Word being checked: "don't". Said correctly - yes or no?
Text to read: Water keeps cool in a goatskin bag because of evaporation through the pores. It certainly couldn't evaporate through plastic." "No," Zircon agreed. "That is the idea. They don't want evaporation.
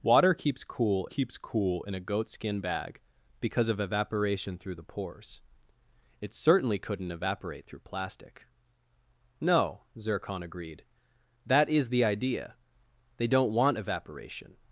yes